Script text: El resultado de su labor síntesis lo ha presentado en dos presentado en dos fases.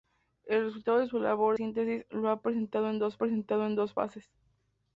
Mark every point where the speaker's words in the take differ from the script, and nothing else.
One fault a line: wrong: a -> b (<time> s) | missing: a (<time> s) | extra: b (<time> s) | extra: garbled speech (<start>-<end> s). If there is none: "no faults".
no faults